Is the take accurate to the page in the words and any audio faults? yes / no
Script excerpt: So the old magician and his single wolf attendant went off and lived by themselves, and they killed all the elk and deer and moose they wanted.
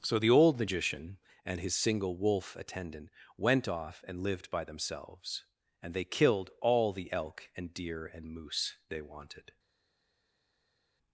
yes